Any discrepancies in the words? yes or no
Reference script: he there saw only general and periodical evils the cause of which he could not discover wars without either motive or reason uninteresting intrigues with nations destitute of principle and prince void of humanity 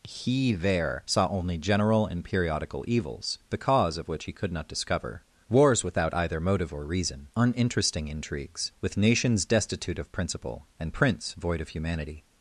no